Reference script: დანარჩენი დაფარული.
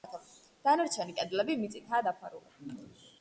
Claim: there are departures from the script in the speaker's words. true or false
true